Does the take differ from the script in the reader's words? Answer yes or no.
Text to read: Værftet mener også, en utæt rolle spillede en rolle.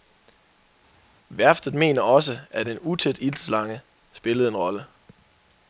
yes